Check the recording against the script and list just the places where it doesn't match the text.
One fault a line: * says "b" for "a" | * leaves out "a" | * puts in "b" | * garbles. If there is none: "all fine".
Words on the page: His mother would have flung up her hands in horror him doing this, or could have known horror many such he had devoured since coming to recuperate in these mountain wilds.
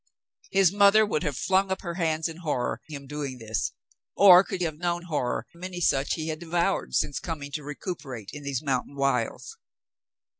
all fine